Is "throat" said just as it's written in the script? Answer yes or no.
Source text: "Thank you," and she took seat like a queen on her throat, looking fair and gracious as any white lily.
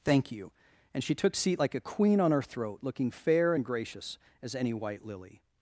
yes